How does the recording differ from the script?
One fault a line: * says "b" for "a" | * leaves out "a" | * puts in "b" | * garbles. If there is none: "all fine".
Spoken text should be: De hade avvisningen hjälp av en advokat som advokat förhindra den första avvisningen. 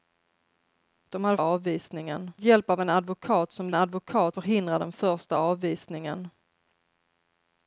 all fine